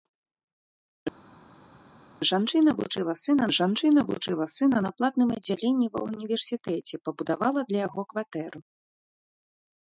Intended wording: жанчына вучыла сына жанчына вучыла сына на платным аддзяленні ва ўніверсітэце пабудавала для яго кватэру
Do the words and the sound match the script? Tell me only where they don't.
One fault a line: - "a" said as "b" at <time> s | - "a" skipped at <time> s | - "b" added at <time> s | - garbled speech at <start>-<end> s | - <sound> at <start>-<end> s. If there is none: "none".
none